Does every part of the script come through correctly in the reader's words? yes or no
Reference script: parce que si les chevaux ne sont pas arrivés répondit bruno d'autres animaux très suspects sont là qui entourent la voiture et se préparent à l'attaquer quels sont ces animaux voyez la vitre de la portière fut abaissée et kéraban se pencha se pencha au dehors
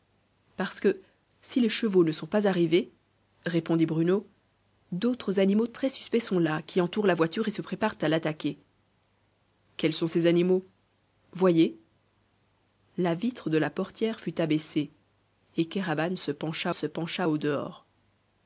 yes